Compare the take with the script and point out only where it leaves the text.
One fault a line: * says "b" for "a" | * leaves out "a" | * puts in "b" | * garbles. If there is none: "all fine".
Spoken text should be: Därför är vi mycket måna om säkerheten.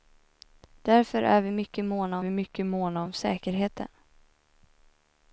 * puts in "vi mycket måna"